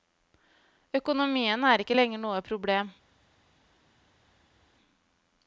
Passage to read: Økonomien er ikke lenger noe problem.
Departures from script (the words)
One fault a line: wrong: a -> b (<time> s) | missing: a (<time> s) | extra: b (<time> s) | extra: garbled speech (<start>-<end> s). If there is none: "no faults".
no faults